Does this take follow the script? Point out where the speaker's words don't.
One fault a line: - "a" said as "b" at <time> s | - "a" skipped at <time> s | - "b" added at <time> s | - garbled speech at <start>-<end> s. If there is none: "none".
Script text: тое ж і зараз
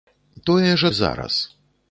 none